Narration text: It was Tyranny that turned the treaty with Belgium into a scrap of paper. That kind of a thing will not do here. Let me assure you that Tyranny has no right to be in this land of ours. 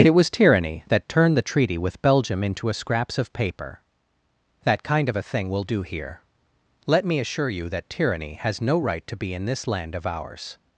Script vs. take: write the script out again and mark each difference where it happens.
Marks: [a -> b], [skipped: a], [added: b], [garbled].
It was Tyranny that turned the treaty with Belgium into a [scrap -> scraps] of paper. That kind of a thing will [skipped: not] do here. Let me assure you that Tyranny has no right to be in this land of ours.